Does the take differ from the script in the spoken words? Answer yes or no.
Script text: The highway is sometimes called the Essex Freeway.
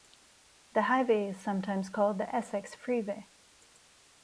no